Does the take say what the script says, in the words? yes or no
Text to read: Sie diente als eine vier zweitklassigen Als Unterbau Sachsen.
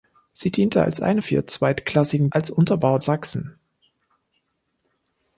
yes